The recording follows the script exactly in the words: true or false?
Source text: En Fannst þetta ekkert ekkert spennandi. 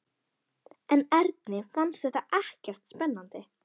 false